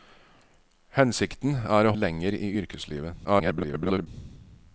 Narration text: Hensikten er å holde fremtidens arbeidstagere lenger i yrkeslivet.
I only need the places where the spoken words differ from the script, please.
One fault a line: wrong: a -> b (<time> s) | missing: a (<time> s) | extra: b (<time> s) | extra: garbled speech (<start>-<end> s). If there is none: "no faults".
missing: holde fremtidens arbeidstagere (1.9 s)
extra: garbled speech (3.2-4.1 s)